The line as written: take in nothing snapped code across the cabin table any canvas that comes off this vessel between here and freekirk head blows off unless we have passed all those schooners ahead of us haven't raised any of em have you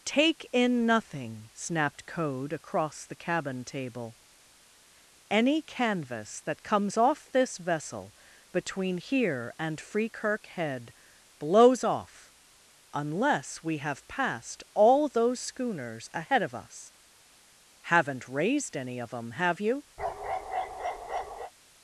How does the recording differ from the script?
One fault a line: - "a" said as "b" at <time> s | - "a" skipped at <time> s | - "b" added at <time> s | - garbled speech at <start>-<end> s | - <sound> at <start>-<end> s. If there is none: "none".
- bark at 20.0-21.5 s